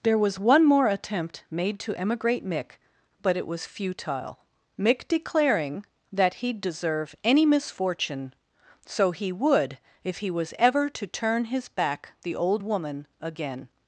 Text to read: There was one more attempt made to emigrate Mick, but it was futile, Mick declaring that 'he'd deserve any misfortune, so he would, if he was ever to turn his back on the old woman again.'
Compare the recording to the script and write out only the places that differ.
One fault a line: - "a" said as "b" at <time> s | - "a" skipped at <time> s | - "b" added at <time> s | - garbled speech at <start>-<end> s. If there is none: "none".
- "on" skipped at 12.1 s